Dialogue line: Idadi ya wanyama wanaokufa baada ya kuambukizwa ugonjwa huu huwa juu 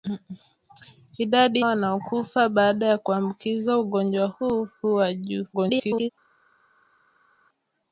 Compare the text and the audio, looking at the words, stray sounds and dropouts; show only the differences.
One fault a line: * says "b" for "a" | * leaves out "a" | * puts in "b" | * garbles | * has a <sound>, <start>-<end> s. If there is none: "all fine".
* leaves out "ya wanyama"
* garbles